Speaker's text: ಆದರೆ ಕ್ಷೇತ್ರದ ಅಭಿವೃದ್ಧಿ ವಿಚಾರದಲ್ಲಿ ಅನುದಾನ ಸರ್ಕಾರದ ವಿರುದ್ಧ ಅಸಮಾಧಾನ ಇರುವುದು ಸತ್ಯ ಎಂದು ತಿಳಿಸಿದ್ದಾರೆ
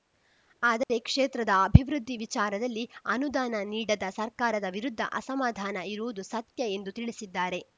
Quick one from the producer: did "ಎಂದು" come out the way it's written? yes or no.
yes